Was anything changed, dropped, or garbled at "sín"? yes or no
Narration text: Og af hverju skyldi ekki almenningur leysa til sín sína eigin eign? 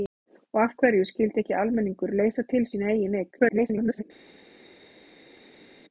yes